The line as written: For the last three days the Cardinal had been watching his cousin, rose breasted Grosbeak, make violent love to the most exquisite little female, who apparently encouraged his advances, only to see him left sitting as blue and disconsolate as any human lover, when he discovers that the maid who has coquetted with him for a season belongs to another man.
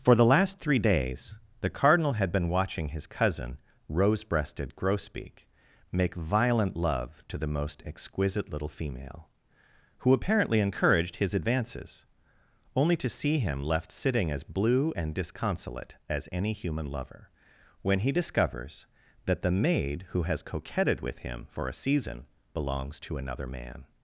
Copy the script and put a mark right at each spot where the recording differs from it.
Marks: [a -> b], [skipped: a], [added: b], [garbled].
For the last three days the Cardinal had been watching his cousin, rose breasted Grosbeak, make violent love to the most exquisite little female, who apparently encouraged his advances, only to see him left sitting as blue and disconsolate as any human lover, when he discovers that the maid who has coquetted with him for a season belongs to another man.